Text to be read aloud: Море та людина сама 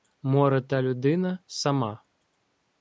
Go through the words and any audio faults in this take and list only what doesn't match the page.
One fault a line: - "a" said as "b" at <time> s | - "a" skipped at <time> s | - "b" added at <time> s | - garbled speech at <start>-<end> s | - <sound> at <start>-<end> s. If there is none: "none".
none